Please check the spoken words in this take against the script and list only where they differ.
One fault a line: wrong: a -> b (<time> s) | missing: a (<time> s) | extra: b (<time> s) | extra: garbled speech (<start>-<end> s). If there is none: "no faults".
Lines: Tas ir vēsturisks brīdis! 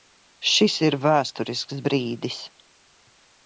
wrong: Tas -> Šis (0.5 s)